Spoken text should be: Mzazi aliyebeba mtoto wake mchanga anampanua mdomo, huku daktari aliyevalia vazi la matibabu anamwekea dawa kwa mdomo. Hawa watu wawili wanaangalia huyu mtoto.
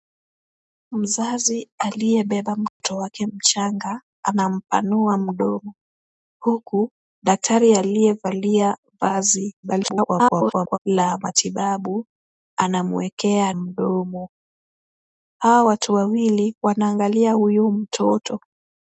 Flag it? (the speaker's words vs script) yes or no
yes